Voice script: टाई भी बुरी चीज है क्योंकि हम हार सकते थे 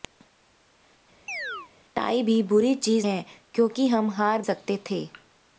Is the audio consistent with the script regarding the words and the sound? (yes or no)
no